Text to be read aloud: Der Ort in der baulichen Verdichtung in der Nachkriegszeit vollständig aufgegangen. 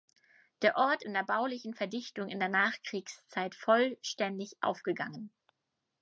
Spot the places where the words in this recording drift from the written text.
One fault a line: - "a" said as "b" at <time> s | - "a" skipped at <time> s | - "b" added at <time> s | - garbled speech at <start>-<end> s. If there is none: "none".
none